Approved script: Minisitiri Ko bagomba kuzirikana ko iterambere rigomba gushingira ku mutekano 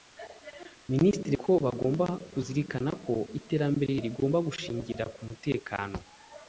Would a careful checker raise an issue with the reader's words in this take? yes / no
no